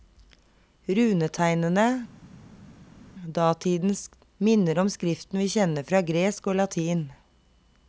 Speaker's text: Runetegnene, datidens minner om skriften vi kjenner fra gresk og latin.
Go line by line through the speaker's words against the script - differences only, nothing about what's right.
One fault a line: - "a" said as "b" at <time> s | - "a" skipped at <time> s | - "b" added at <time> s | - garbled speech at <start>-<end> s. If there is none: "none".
none